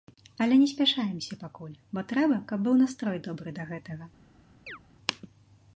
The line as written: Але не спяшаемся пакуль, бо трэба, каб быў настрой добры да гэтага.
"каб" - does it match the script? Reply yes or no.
yes